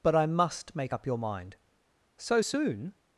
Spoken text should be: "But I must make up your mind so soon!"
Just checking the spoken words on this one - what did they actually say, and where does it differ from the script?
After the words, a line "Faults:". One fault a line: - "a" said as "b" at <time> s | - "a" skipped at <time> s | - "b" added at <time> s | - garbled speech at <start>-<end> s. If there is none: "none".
"But I must make up your mind so soon!"
Faults:
none